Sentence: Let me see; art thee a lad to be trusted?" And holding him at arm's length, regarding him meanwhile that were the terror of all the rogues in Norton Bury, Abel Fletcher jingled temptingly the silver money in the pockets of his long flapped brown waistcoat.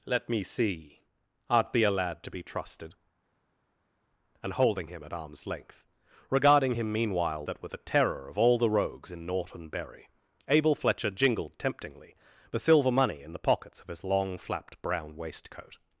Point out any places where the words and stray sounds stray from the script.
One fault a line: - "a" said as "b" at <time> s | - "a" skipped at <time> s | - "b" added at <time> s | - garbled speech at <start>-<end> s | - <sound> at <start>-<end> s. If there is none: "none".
none